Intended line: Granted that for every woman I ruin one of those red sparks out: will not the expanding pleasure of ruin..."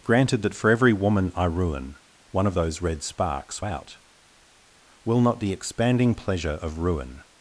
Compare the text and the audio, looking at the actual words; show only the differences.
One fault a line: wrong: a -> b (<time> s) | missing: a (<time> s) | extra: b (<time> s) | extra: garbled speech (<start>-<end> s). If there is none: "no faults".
no faults